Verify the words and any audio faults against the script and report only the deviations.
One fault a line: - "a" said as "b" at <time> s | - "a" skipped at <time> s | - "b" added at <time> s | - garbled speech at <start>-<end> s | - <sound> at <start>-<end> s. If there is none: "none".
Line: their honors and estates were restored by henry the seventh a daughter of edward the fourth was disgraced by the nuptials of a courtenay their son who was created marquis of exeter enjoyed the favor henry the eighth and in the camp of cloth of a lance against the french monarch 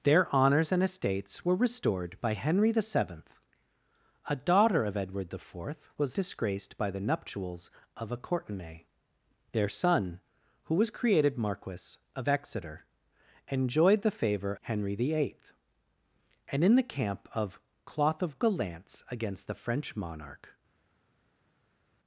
none